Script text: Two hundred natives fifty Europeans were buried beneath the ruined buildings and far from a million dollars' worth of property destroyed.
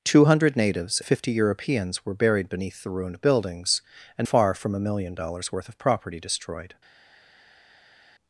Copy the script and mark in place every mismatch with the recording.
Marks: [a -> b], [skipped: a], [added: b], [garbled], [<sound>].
Two hundred natives fifty Europeans were buried beneath the ruined buildings and far from a million dollars' worth of property destroyed.